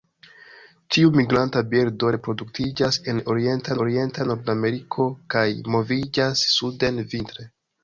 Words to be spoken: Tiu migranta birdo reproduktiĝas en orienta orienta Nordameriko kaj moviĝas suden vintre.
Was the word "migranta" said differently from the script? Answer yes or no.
no